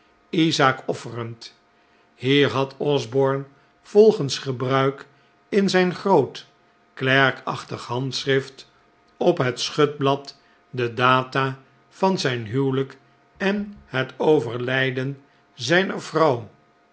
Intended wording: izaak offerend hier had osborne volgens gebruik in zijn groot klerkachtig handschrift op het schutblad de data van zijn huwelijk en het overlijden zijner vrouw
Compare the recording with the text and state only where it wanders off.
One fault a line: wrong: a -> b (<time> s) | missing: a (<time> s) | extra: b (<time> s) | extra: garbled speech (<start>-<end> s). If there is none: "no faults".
no faults